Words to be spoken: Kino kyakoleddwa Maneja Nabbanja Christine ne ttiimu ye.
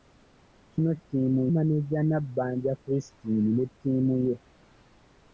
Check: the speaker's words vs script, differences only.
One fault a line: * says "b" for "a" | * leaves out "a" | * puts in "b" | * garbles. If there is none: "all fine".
* says "ttiimu" for "kyakoleddwa"